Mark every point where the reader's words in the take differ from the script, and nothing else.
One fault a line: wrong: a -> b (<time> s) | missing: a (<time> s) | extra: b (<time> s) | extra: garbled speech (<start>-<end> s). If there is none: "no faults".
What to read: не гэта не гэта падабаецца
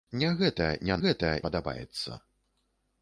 no faults